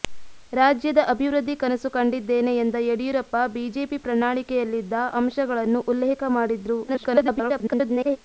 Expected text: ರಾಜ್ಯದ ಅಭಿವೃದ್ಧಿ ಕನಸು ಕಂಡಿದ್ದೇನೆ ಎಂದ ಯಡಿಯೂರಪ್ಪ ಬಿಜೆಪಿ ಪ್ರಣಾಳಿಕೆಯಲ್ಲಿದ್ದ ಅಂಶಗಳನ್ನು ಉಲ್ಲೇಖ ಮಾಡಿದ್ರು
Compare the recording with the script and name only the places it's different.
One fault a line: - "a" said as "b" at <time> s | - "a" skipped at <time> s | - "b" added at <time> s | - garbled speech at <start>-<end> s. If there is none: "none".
- garbled speech at 6.9-8.2 s